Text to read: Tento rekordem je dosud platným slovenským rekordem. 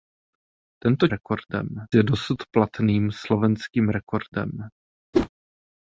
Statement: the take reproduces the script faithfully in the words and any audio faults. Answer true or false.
false